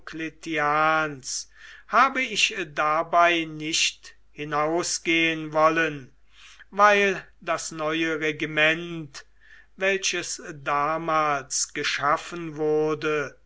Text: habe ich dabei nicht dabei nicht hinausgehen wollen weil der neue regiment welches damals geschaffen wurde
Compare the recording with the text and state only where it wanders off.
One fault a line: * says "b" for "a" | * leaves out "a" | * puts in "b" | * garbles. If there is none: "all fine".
* leaves out "dabei nicht"
* says "das" for "der"